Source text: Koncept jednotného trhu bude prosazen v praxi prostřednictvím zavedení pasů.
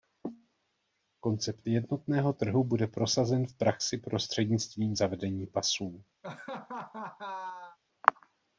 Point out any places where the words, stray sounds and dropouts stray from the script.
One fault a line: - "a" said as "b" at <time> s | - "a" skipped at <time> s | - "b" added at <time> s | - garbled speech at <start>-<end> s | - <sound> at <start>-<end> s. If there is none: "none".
- laugh at 6.2-7.8 s